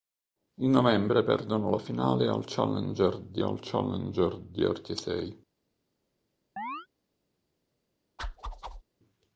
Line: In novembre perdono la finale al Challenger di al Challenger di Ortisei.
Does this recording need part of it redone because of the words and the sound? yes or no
yes